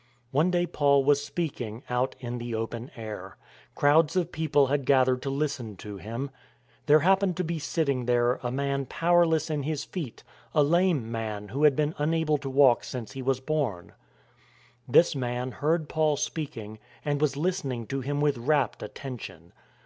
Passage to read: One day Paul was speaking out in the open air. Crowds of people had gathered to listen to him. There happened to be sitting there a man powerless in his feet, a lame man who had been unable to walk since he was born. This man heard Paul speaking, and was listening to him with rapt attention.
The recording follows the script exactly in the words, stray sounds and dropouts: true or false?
true